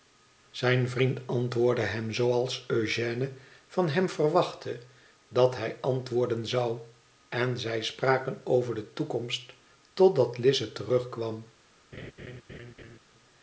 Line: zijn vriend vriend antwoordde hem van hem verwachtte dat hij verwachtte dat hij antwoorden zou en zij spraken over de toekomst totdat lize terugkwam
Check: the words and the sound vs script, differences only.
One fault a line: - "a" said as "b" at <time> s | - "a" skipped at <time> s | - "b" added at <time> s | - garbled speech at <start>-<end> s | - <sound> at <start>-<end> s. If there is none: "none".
- "vriend" skipped at 1.2 s
- "zooals eugène" added at 2.1 s
- "verwachtte dat hij" skipped at 5.8 s
- laugh at 11.9-13.0 s